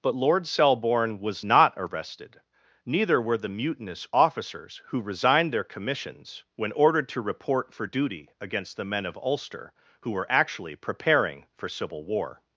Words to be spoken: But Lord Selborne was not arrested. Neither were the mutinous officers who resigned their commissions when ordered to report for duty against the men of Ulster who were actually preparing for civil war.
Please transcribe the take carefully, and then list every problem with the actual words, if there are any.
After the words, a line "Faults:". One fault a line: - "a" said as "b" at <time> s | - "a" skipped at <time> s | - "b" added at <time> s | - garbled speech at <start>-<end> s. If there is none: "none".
But Lord Selborne was not arrested. Neither were the mutinous officers who resigned their commissions when ordered to report for duty against the men of Ulster who were actually preparing for civil war.
Faults:
none